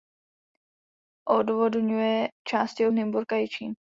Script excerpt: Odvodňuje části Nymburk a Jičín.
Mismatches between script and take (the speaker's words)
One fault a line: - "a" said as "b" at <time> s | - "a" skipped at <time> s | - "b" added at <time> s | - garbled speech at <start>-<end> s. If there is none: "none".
none